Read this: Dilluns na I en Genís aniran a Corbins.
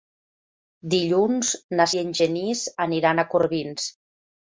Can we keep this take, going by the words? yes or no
yes